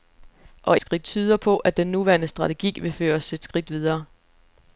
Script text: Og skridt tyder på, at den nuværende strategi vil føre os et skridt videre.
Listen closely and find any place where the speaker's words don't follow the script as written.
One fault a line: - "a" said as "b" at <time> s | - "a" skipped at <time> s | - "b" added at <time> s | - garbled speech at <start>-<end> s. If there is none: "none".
none